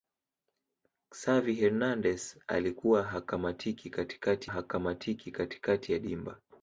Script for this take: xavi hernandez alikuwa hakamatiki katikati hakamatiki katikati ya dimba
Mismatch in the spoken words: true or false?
false